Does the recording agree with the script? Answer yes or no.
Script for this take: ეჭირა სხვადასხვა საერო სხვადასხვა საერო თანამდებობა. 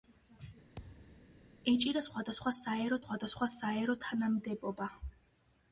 yes